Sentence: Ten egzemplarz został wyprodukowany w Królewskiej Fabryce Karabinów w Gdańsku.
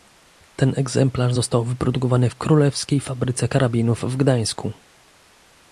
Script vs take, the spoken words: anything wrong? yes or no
no